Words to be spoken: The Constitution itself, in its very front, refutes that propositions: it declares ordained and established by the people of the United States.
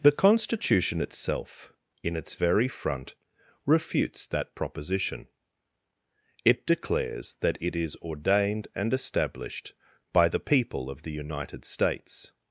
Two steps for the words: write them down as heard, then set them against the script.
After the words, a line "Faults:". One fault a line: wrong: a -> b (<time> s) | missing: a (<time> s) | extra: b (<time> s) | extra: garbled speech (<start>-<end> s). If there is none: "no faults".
The Constitution itself, in its very front, refutes that proposition: it declares that it is ordained and established by the people of the United States.
Faults:
wrong: propositions -> proposition (4.5 s)
extra: that it is (7.4 s)